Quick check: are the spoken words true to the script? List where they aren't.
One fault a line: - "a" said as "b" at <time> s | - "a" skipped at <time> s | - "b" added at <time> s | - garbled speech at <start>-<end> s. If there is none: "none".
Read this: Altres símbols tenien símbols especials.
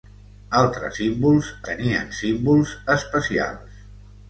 none